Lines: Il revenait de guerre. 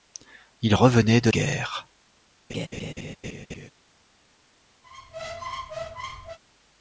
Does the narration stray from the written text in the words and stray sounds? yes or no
yes